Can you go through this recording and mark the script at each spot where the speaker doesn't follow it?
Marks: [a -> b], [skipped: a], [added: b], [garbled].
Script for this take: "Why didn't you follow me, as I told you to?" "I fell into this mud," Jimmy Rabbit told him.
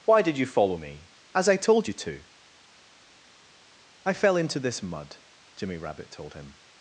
"Why [didn't -> did] you follow me, as I told you to?" "I fell into this mud," Jimmy Rabbit told him.